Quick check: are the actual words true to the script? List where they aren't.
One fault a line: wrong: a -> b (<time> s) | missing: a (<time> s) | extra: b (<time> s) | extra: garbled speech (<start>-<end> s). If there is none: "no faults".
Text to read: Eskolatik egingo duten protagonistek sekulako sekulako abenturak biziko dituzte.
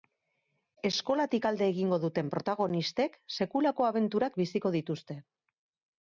extra: alde (1.5 s)
missing: sekulako (3.9 s)